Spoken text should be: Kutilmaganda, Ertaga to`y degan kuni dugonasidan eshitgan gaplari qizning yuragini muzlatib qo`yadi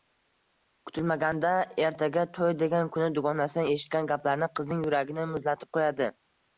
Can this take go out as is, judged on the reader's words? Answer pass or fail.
pass